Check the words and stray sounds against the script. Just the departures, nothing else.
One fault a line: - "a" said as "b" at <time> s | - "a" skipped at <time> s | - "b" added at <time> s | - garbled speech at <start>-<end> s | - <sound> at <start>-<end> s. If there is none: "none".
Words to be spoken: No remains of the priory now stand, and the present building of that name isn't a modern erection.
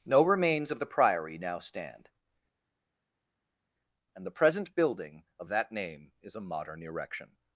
- "isn't" said as "is" at 6.2 s